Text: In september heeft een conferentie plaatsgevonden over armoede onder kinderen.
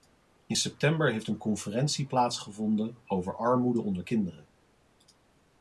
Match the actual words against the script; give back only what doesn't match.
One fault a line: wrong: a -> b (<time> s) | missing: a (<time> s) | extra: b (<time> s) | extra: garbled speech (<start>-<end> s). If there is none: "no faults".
no faults